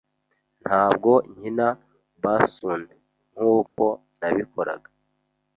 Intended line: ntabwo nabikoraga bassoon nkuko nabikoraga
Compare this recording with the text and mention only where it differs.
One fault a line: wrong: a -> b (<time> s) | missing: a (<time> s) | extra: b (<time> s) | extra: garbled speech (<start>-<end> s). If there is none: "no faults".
wrong: nabikoraga -> nkina (1.3 s)